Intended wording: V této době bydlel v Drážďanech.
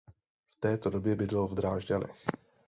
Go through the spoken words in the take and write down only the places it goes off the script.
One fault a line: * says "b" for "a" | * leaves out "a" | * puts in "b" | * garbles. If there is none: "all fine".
all fine